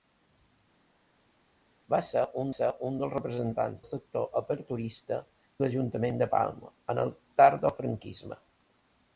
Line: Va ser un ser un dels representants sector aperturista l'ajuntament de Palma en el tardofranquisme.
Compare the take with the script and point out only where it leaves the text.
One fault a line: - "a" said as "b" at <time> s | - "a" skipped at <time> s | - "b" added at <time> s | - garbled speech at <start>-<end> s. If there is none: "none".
none